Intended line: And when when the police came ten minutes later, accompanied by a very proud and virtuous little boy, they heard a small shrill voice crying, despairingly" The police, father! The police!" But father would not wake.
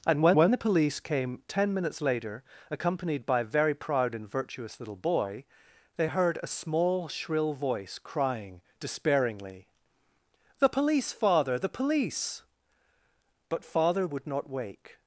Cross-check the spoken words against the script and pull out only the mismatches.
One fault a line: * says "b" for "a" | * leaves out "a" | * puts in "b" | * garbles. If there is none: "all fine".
all fine